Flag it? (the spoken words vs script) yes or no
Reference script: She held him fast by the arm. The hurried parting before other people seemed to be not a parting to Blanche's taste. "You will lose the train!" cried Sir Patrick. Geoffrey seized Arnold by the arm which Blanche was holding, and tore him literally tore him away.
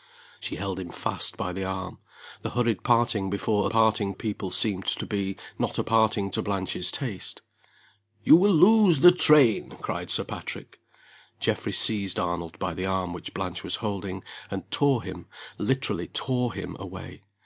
yes